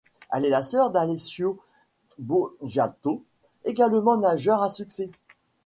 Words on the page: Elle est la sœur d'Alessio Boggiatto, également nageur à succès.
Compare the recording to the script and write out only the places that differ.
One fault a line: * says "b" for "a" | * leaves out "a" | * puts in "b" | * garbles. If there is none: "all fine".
all fine